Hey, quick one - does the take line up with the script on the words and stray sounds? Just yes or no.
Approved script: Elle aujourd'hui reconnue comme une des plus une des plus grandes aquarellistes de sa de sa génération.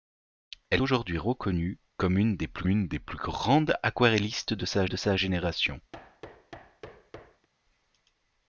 no